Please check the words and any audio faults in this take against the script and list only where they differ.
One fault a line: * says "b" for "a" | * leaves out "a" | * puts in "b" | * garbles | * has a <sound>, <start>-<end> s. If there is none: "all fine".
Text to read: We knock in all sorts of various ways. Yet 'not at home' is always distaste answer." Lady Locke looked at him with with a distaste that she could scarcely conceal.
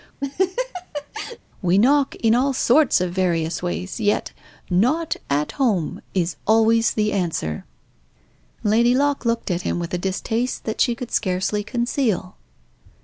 * has a laugh, 0.2-1.4 s
* says "the" for "distaste"
* leaves out "with"